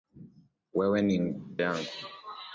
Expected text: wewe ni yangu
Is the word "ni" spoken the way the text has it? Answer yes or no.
yes